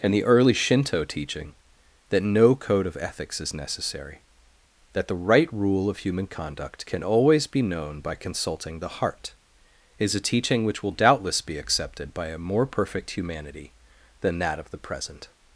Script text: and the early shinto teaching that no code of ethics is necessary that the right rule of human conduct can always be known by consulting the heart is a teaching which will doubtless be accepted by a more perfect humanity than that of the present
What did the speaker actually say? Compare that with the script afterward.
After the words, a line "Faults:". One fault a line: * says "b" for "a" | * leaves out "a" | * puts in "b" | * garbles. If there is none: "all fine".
and the early shinto teaching that no code of ethics is necessary that the right rule of human conduct can always be known by consulting the heart is a teaching which will doubtless be accepted by a more perfect humanity than that of the present
Faults:
all fine